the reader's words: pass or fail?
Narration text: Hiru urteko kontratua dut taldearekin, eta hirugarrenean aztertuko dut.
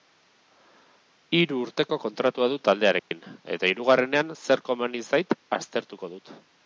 fail